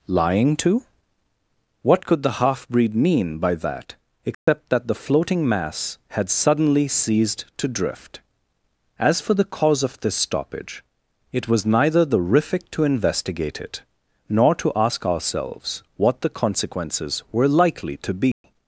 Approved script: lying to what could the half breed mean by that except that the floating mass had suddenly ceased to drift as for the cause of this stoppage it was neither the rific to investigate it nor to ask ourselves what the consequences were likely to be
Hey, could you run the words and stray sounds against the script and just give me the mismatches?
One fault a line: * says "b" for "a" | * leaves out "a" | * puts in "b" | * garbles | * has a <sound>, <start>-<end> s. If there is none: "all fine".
* has a dropout, 4.3-4.5 s
* has a dropout, 18.3-18.4 s